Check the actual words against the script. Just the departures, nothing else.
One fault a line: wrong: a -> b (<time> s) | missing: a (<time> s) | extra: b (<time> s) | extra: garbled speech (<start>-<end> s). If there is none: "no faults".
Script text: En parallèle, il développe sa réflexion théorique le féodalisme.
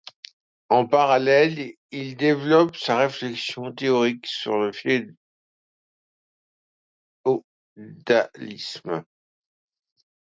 extra: sur (4.2 s)